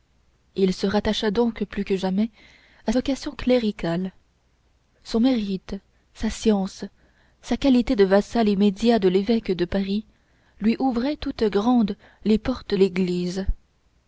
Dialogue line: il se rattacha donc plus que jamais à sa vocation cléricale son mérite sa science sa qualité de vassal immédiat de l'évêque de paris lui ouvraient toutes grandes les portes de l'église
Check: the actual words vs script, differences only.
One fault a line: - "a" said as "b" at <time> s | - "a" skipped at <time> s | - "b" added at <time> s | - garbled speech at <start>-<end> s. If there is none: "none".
- "sa" skipped at 2.9 s
- "de" skipped at 12.7 s